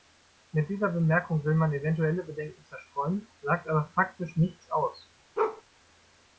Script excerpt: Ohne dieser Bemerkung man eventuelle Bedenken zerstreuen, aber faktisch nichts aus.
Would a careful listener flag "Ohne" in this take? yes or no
yes